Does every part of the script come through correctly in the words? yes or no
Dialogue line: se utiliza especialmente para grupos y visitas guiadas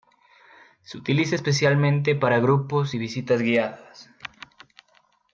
yes